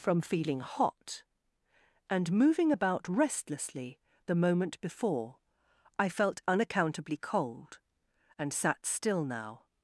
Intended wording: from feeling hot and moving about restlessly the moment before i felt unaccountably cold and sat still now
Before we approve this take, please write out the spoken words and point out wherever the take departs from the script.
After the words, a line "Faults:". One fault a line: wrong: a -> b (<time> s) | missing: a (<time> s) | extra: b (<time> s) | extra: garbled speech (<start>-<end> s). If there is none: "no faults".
from feeling hot and moving about restlessly the moment before i felt unaccountably cold and sat still now
Faults:
no faults